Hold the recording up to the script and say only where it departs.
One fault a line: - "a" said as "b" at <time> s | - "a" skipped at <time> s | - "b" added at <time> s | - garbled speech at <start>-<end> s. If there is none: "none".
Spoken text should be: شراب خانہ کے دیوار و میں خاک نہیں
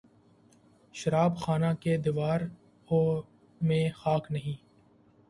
none